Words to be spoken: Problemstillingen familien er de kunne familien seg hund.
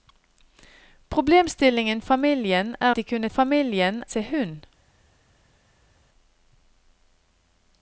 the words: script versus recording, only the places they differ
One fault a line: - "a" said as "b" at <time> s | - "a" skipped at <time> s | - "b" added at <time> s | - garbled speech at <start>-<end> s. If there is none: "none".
none